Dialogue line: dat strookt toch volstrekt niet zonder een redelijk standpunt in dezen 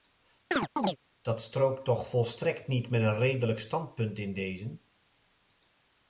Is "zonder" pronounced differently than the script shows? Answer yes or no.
yes